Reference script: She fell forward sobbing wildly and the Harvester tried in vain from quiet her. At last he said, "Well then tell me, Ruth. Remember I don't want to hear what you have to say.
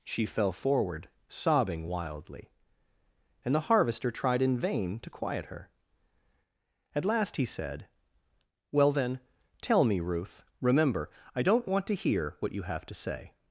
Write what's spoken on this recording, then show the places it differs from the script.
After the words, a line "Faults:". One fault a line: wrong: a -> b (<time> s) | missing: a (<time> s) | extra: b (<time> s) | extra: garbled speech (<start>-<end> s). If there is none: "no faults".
She fell forward sobbing wildly and the Harvester tried in vain to quiet her. At last he said, "Well then tell me, Ruth. Remember I don't want to hear what you have to say.
Faults:
wrong: from -> to (5.0 s)